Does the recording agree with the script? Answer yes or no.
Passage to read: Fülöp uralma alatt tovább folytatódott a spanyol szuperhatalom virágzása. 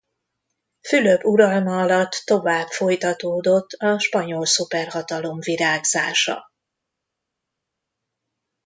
yes